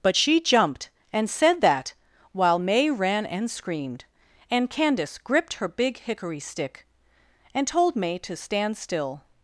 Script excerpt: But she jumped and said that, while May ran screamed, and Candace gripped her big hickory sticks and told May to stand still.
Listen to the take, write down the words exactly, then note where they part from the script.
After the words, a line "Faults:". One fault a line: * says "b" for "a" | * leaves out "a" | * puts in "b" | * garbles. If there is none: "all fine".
But she jumped and said that, while May ran and screamed, and Candace gripped her big hickory stick and told May to stand still.
Faults:
* puts in "and"
* says "stick" for "sticks"